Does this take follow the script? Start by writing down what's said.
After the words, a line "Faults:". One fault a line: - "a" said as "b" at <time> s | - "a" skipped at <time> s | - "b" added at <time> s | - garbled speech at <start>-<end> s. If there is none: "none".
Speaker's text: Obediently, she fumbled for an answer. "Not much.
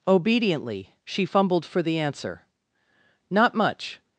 Obediently, she fumbled for the answer. "Not much.
Faults:
- "an" said as "the" at 1.8 s